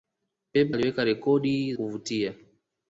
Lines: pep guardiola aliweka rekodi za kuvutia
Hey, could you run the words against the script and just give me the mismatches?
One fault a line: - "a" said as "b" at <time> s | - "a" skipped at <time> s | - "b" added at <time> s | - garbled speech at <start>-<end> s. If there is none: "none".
- "guardiola" skipped at 0.7 s
- "za" skipped at 1.7 s